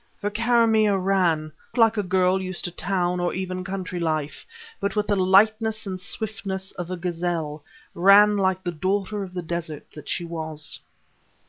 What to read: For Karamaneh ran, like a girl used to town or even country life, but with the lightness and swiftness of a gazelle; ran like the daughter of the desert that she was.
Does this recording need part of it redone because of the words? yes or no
no